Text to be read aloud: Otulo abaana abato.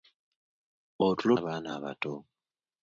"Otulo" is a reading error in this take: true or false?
false